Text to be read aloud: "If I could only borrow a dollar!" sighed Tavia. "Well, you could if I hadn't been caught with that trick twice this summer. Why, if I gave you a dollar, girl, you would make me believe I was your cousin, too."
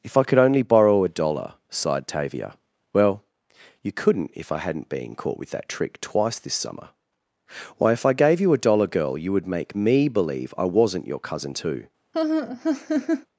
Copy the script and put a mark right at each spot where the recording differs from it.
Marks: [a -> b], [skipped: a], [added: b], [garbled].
"If I could only borrow a dollar!" sighed Tavia. "Well, you [could -> couldn't] if I hadn't been caught with that trick twice this summer. Why, if I gave you a dollar, girl, you would make me believe I [was -> wasn't] your cousin, too."